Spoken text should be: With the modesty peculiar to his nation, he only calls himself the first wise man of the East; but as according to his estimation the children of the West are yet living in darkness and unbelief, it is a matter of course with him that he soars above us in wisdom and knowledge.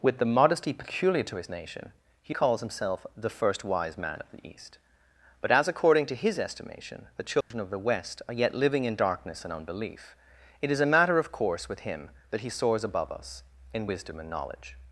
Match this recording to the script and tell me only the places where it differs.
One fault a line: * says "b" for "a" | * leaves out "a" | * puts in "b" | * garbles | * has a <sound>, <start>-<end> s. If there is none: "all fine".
* leaves out "only"
* has a dropout, 7.4-7.5 s